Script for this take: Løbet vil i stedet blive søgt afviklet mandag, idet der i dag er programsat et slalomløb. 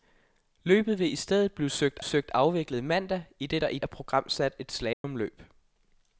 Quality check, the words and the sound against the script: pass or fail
fail